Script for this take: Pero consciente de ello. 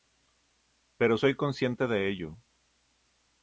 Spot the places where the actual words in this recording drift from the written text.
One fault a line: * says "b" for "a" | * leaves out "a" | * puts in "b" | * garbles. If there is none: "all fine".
* puts in "soy"